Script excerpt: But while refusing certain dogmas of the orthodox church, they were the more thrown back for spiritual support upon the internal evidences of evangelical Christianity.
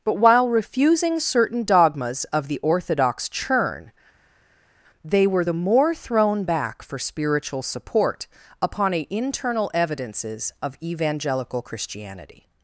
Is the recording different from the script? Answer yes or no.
yes